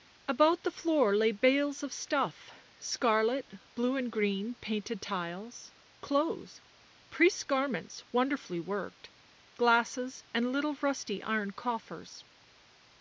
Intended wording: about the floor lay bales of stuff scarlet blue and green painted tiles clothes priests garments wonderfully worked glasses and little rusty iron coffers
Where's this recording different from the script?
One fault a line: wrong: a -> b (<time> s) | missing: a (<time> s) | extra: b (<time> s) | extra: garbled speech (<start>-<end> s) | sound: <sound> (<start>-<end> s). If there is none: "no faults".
no faults